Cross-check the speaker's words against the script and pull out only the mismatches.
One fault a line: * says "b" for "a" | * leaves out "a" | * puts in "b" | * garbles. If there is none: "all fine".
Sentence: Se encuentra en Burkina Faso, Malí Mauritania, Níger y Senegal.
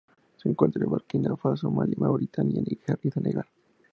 all fine